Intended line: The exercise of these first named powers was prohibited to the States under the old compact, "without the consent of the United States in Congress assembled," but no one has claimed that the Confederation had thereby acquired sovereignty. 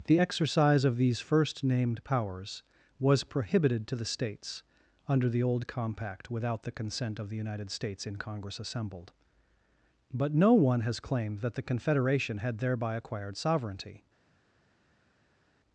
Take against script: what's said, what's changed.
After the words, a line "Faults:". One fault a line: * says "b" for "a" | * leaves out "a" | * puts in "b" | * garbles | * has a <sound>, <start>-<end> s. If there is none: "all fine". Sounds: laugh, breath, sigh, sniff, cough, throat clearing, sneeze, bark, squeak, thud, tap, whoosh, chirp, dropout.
The exercise of these first named powers was prohibited to the States under the old compact, "without the consent of the United States in Congress assembled," but no one has claimed that the Confederation had thereby acquired sovereignty.
Faults:
all fine